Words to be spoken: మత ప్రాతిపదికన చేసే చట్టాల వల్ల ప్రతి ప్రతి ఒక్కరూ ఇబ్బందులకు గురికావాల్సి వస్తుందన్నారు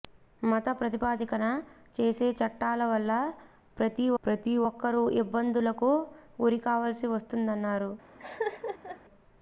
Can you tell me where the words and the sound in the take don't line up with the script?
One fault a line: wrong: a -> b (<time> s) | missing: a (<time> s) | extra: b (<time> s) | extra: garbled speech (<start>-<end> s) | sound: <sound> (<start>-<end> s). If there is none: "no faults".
sound: laugh (8.2-9.0 s)